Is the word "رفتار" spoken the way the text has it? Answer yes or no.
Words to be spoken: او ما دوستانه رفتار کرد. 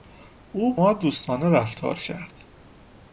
yes